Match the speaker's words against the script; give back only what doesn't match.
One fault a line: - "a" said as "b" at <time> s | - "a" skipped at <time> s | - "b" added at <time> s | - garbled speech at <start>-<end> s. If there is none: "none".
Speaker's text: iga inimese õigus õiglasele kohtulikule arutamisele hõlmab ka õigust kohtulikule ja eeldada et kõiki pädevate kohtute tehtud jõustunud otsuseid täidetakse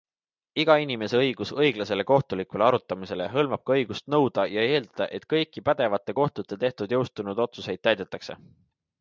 - "kohtulikule" said as "nõuda" at 4.2 s